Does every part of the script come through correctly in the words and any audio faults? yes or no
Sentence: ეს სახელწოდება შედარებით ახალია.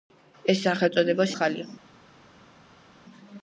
no